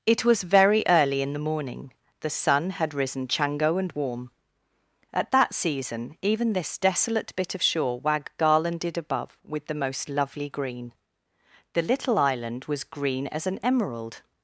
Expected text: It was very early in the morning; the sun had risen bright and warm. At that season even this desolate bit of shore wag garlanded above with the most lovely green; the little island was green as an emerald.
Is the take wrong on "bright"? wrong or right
wrong